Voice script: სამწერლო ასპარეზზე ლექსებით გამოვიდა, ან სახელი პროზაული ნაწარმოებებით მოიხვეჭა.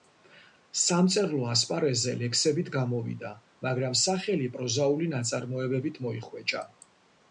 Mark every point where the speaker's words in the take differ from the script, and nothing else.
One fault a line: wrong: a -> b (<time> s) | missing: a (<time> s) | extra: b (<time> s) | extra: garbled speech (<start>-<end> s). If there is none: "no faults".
wrong: ან -> მაგრამ (3.7 s)